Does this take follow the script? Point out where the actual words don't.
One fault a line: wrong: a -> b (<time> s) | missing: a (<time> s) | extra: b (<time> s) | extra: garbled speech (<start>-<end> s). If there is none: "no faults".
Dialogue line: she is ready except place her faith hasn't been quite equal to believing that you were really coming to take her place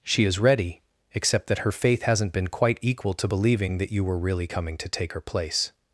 wrong: place -> that (1.5 s)